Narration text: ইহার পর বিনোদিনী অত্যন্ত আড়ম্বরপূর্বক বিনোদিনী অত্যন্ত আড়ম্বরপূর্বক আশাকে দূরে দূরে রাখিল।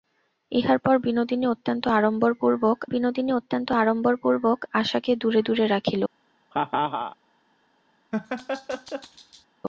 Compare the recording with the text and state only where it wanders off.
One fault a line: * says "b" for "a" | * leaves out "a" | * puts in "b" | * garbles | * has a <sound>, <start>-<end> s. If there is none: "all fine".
* has a laugh, 6.5-7.2 s
* has a laugh, 8.1-9.5 s